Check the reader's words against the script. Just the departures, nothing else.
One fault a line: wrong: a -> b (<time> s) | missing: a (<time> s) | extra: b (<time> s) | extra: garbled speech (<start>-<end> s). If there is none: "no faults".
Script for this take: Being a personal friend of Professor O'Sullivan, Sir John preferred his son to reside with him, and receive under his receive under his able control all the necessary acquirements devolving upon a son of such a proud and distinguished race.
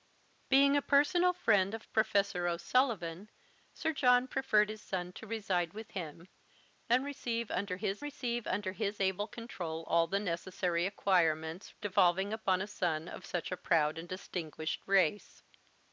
no faults